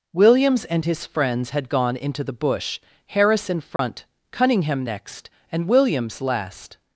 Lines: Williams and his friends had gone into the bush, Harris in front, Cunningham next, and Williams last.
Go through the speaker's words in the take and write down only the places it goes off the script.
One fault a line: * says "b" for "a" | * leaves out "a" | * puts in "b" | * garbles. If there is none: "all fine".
all fine